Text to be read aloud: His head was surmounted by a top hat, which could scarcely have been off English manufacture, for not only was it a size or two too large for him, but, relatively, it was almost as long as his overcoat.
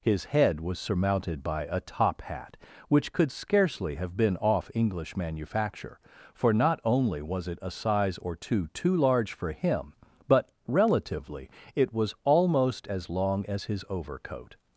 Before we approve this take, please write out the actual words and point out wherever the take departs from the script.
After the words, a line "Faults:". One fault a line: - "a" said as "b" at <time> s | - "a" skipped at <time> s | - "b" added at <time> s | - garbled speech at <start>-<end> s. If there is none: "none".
His head was surmounted by a top hat, which could scarcely have been off English manufacture, for not only was it a size or two too large for him, but, relatively, it was almost as long as his overcoat.
Faults:
none